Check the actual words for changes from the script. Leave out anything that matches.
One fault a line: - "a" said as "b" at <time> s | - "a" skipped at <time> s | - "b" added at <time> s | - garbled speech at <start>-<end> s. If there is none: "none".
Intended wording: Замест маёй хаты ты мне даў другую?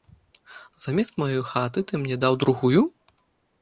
none